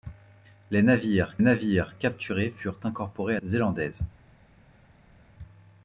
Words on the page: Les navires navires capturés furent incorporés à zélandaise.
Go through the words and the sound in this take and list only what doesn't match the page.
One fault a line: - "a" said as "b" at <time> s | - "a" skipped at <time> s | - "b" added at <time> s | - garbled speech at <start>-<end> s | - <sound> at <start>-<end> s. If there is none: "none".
none